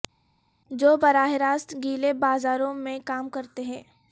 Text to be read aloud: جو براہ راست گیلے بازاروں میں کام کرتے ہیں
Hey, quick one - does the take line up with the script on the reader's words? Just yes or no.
yes